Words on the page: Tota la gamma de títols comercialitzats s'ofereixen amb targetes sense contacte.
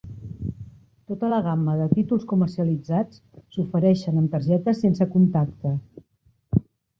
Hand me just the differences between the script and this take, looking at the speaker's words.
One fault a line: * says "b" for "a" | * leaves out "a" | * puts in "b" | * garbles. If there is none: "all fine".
all fine